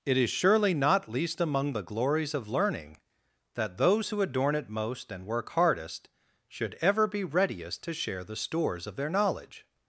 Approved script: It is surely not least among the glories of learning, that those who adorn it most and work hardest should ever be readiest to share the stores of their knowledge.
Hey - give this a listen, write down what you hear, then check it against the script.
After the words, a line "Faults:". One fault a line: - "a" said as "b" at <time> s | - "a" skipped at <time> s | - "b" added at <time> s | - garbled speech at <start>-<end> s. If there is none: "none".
It is surely not least among the glories of learning, that those who adorn it most and work hardest should ever be readiest to share the stores of their knowledge.
Faults:
none